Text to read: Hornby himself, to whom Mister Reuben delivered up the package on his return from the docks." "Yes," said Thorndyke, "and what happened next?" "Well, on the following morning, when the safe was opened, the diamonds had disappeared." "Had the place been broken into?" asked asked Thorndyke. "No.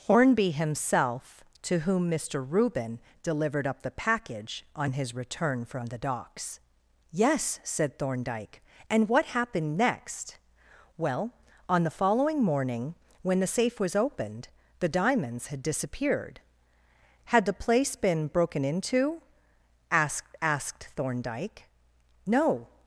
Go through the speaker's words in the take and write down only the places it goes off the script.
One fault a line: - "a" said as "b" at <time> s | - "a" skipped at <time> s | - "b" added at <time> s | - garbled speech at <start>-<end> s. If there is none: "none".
none